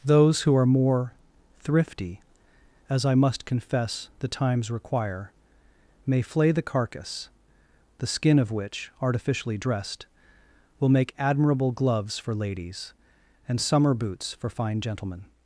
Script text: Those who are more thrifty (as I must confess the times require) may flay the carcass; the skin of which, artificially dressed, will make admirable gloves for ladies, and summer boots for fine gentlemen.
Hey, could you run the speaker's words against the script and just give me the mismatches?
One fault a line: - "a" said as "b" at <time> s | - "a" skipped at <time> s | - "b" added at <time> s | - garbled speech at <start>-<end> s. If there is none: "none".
none